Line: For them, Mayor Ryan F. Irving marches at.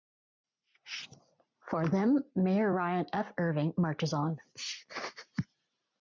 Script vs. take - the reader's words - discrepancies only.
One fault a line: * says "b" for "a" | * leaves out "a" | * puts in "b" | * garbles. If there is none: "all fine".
* says "on" for "at"